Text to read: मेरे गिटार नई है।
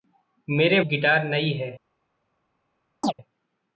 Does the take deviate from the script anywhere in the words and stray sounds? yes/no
yes